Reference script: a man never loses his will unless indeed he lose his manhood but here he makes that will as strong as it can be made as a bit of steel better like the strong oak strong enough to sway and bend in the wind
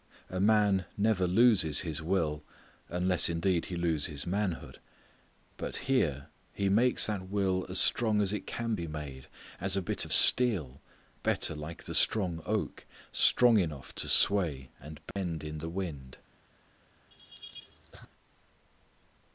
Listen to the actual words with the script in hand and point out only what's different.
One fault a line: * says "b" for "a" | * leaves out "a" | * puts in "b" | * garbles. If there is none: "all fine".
all fine